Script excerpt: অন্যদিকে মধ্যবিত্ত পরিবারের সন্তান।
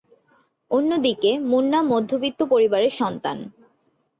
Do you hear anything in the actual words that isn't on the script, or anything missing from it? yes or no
yes